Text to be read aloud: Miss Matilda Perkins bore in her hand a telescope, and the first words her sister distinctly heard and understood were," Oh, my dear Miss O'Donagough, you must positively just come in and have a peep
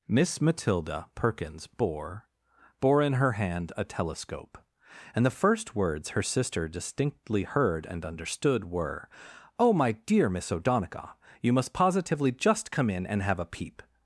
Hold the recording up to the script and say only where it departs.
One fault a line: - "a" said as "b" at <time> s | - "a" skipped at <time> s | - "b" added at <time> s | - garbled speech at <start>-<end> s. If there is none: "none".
- "bore" added at 2.8 s